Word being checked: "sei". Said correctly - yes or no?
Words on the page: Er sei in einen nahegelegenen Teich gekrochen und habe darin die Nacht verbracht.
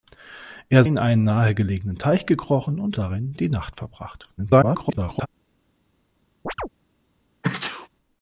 no